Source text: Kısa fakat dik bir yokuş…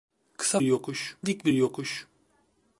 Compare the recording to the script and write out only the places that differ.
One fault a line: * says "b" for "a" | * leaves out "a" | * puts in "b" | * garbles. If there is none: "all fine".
* says "yokuş" for "fakat"